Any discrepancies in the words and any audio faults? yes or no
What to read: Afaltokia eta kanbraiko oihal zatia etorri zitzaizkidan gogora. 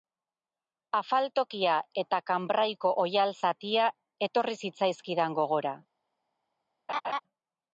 yes